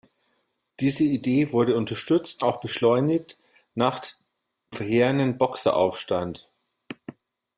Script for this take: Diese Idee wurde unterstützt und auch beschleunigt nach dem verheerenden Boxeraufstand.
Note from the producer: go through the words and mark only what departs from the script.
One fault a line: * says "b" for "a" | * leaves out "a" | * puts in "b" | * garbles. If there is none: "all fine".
* leaves out "und"
* leaves out "dem"